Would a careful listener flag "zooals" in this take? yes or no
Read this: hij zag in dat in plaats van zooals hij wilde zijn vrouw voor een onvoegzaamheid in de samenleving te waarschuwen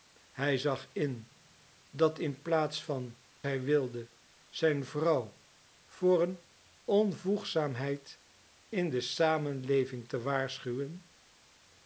yes